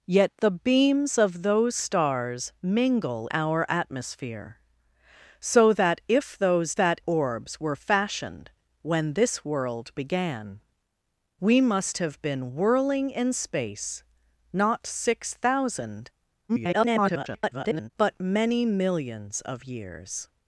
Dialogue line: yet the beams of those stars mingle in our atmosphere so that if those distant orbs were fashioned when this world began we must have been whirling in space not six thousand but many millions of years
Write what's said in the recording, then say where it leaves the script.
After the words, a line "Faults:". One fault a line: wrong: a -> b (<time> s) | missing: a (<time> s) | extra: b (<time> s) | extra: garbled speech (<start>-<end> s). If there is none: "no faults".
yet the beams of those stars mingle our atmosphere so that if those that orbs were fashioned when this world began we must have been whirling in space not six thousand [garbled] but many millions of years
Faults:
missing: in (3.3 s)
wrong: distant -> that (6.7 s)
extra: garbled speech (16.5-17.9 s)